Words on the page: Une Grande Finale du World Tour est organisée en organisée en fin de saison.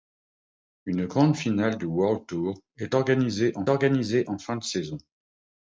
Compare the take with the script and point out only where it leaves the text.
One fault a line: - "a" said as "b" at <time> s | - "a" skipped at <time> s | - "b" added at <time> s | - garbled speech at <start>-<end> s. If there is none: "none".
none